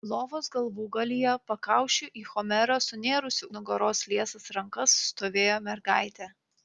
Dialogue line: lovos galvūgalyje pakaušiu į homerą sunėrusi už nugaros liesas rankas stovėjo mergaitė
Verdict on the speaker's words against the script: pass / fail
fail